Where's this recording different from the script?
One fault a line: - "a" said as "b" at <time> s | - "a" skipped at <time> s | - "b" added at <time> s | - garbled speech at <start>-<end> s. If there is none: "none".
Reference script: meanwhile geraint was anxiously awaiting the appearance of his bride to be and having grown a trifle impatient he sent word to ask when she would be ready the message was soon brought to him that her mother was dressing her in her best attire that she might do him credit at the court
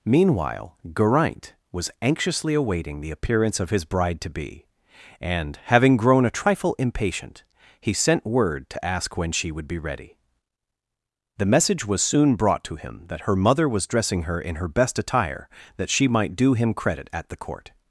none